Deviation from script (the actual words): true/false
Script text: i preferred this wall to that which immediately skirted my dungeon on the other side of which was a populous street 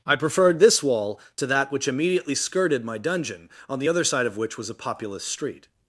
false